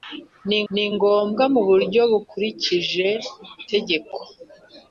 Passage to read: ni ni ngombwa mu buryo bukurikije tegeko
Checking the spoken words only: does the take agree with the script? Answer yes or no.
yes